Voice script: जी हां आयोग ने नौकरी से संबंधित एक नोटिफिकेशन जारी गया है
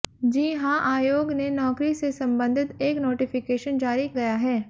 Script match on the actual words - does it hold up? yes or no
yes